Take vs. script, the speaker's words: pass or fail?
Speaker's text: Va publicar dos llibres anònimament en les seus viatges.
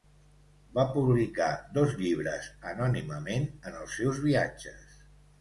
fail